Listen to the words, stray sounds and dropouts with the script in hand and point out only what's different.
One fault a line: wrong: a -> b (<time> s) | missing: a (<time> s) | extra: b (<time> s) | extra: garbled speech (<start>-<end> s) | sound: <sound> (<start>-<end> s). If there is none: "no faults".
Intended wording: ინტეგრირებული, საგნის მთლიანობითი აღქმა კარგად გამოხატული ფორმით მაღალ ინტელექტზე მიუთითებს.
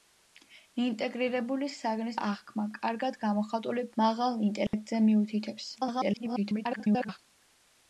missing: მთლიანობითი (2.1 s)
missing: ფორმით (3.8 s)
sound: dropout (4.7-4.7 s)
extra: garbled speech (5.8-7.2 s)